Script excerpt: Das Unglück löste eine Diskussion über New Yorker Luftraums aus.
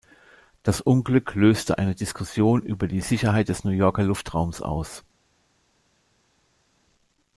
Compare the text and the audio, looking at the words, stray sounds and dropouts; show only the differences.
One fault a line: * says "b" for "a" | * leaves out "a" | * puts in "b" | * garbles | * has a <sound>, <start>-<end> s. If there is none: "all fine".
* puts in "die Sicherheit des"